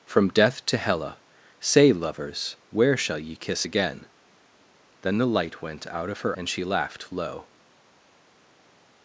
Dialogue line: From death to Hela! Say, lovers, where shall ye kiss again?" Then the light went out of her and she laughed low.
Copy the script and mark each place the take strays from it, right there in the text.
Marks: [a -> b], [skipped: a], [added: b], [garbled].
From death to Hela! Say, lovers, where shall ye kiss again?" Then the light went out of her and she laughed low.